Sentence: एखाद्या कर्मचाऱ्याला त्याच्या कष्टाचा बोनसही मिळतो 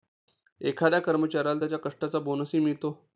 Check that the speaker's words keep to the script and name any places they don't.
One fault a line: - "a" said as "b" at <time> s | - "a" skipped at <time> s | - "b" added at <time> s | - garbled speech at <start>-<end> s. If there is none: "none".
none